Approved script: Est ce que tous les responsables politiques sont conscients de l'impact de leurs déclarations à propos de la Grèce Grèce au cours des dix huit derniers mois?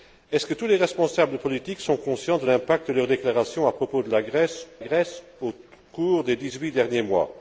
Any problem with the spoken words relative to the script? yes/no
no